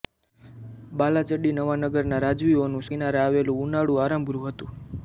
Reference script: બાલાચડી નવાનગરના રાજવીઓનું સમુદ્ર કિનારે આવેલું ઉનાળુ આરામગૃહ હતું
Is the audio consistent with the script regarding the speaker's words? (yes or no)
no